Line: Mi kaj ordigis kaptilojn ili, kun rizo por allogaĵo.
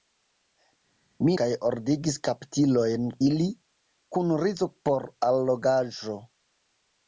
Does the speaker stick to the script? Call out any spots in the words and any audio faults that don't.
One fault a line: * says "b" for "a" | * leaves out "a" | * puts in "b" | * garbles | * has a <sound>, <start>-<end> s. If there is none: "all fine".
all fine